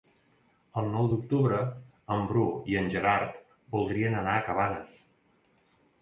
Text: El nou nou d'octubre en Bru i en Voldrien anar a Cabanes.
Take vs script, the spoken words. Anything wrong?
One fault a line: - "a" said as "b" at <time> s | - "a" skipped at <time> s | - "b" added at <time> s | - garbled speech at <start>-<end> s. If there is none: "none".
- "nou" skipped at 1.1 s
- "Gerard" added at 2.9 s